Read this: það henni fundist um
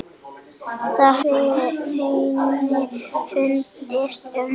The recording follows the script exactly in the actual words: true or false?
true